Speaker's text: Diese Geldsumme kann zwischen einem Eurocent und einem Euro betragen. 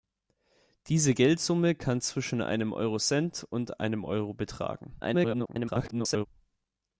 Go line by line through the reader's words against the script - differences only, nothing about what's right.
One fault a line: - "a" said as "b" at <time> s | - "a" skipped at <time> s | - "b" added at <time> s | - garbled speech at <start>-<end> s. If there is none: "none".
- garbled speech at 5.0-6.3 s